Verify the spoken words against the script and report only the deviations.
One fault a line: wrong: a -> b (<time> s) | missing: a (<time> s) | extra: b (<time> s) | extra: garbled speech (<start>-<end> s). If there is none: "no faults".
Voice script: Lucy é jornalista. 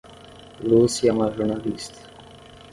extra: uma (1.1 s)